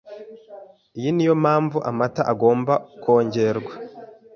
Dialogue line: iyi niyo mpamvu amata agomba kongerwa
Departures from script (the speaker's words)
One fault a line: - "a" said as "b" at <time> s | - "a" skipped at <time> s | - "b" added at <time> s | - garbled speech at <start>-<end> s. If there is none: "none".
none